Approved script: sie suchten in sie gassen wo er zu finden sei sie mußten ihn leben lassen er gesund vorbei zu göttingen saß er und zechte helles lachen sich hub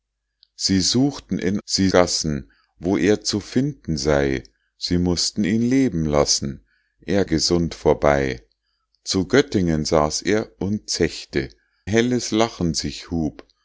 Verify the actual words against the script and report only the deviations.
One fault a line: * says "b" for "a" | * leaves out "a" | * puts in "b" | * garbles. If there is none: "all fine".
all fine